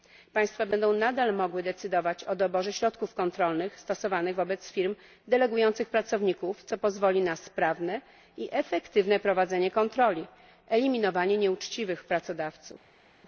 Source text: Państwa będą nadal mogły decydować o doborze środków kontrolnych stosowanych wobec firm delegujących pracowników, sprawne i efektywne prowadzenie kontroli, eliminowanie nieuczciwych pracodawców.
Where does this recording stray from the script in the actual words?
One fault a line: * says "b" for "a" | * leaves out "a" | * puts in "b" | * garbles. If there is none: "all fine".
* puts in "co pozwoli na"